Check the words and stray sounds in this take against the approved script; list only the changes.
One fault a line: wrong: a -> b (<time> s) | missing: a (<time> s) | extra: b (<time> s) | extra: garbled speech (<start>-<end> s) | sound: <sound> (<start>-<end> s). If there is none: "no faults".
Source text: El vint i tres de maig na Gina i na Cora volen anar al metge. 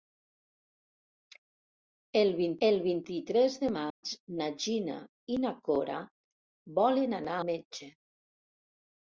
extra: el vint (2.7 s)
sound: dropout (3.9-4.0 s)
missing: al (7.4 s)